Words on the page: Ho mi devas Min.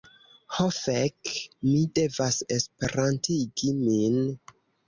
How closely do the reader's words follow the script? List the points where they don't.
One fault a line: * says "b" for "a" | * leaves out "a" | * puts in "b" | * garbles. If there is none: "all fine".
* puts in "fek"
* puts in "Esperantigi"